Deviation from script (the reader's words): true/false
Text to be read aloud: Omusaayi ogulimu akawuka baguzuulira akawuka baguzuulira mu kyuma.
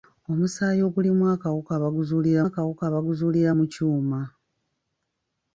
false